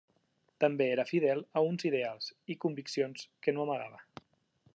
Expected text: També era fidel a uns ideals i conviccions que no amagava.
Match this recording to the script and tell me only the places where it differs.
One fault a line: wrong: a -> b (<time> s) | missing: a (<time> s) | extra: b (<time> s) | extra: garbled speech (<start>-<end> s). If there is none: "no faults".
no faults